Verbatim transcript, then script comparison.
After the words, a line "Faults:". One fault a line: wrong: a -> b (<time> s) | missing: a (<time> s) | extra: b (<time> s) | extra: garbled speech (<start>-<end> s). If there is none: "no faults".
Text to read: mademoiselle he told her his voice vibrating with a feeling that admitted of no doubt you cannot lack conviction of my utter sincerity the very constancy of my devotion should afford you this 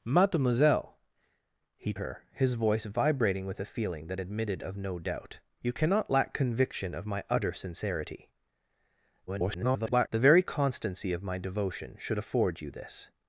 mademoiselle he her his voice vibrating with a feeling that admitted of no doubt you cannot lack conviction of my utter sincerity [garbled] the very constancy of my devotion should afford you this
Faults:
missing: told (1.9 s)
extra: garbled speech (9.3-10.1 s)